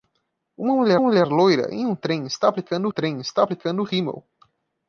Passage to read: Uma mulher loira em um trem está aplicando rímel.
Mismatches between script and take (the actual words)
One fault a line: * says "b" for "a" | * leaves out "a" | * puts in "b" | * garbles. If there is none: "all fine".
* puts in "mulher"
* puts in "trem está aplicando"